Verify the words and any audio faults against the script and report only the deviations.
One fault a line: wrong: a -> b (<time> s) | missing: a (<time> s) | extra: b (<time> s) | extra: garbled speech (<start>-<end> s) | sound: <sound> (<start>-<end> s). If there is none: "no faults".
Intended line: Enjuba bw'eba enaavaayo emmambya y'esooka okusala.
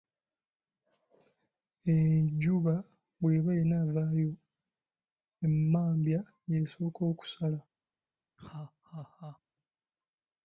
sound: laugh (8.4-9.4 s)